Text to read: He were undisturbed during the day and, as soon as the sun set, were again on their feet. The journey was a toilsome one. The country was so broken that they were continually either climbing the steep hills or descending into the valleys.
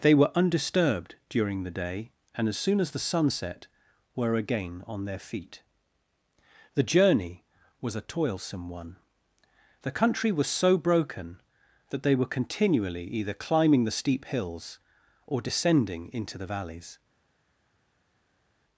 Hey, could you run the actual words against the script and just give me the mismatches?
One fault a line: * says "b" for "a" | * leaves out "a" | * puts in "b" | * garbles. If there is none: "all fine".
* says "They" for "He"